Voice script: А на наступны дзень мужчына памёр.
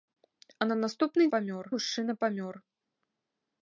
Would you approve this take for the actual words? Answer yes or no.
no